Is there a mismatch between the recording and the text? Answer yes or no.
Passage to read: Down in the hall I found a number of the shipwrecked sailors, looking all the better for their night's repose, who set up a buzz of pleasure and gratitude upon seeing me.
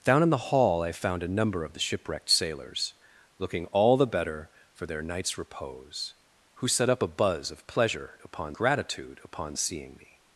yes